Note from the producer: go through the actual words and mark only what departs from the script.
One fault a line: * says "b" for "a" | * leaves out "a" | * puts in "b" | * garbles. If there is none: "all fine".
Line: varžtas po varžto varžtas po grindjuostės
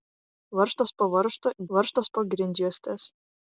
all fine